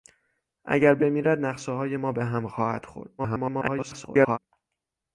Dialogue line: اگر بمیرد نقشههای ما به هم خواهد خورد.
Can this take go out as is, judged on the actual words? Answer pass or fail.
fail